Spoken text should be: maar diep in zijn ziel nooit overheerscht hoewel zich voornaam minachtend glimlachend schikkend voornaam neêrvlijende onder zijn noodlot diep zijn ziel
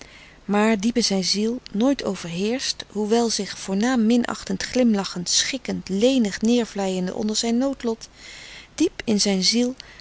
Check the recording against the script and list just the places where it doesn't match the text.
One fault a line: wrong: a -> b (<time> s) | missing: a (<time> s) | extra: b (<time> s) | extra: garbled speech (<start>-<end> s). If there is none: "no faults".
wrong: voornaam -> lenig (5.9 s)
extra: in (9.0 s)